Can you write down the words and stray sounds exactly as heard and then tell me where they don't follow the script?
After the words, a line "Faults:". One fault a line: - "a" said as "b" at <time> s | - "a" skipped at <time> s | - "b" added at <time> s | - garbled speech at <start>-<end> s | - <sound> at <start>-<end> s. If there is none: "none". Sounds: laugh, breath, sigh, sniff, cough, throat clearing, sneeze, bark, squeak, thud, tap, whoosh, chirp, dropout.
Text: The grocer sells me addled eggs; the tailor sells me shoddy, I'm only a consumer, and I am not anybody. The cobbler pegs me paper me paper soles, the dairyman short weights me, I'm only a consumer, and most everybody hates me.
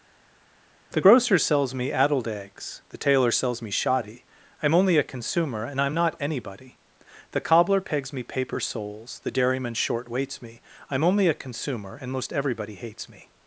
The grocer sells me addled eggs; the tailor sells me shoddy, I'm only a consumer, and I am not anybody. The cobbler pegs me paper soles, the dairyman short weights me, I'm only a consumer, and most everybody hates me.
Faults:
- "me paper" skipped at 8.6 s